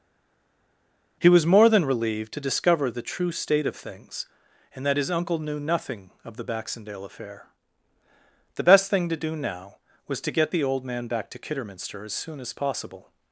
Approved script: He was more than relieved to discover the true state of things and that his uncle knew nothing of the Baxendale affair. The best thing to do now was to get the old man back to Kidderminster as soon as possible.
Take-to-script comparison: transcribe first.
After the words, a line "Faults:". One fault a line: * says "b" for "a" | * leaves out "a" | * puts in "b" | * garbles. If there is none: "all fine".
He was more than relieved to discover the true state of things and that his uncle knew nothing of the Baxendale affair. The best thing to do now was to get the old man back to Kidderminster as soon as possible.
Faults:
all fine